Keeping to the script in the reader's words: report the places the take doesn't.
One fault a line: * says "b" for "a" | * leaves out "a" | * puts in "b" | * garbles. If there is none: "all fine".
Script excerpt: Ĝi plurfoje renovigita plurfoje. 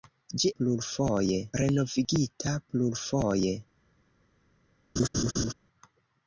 all fine